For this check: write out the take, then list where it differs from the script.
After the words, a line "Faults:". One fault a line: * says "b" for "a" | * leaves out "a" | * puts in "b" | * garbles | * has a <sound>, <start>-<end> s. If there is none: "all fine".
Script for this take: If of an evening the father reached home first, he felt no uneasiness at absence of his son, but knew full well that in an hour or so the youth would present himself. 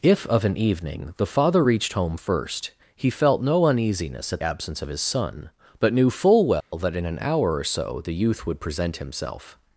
If of an evening the father reached home first, he felt no uneasiness at absence of his son, but knew full well that in an hour or so the youth would present himself.
Faults:
* has a dropout, 6.6-6.7 s